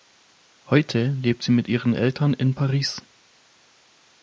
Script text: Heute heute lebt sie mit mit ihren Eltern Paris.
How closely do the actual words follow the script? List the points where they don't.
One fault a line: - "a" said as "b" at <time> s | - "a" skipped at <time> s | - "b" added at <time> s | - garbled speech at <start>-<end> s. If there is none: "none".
- "heute" skipped at 1.1 s
- "mit" skipped at 1.7 s
- "in" added at 2.3 s